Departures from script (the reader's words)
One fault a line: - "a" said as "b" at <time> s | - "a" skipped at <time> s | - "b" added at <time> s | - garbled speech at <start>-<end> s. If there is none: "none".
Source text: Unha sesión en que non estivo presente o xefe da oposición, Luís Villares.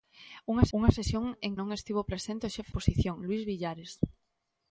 - "unha" added at 0.8 s
- "que" skipped at 1.5 s
- "da" skipped at 2.7 s